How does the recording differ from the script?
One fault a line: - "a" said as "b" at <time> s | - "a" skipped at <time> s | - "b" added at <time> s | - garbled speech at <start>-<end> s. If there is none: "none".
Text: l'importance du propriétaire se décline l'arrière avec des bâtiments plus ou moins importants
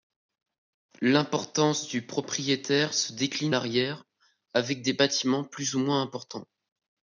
none